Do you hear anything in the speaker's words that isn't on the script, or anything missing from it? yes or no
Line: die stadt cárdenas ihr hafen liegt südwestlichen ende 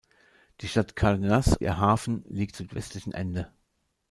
no